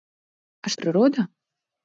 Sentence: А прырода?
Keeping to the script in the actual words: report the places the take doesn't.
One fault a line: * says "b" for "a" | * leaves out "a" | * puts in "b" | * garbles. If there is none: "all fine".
all fine